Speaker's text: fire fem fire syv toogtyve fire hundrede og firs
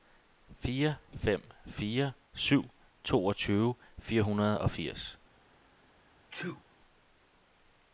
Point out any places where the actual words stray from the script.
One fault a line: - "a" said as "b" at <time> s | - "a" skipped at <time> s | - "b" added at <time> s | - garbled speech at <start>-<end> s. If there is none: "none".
none